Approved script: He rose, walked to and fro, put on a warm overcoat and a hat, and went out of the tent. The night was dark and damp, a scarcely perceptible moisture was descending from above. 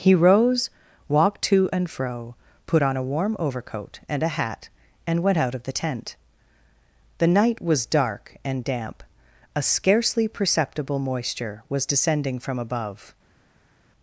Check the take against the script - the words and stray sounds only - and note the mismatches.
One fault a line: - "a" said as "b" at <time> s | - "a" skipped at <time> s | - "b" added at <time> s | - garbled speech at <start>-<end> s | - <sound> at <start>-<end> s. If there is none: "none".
none